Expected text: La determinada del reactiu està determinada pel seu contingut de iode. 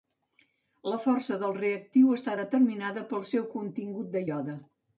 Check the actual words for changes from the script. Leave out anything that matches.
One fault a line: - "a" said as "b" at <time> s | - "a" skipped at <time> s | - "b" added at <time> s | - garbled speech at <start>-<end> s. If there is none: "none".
- "determinada" said as "força" at 1.0 s